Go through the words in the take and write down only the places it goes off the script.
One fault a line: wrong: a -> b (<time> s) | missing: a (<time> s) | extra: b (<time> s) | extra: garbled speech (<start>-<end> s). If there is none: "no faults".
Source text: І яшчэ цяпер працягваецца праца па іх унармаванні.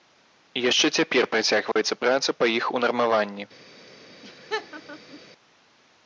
no faults